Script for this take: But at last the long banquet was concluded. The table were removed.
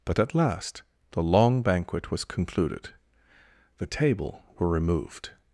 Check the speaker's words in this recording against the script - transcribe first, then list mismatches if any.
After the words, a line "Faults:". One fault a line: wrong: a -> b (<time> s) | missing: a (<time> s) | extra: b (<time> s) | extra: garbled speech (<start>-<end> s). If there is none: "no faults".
But at last the long banquet was concluded. The table were removed.
Faults:
no faults